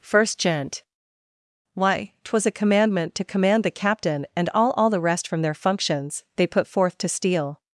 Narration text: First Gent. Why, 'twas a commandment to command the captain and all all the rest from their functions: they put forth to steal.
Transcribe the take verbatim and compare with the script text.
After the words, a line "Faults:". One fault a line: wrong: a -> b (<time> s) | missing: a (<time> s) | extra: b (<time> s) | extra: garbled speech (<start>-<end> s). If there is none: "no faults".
First Gent. Why, 'twas a commandment to command the captain and all all the rest from their functions: they put forth to steal.
Faults:
no faults